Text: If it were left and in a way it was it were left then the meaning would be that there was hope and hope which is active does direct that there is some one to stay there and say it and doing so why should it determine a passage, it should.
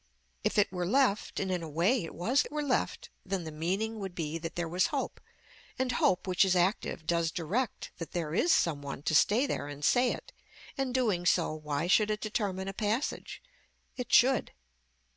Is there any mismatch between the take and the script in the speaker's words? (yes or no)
no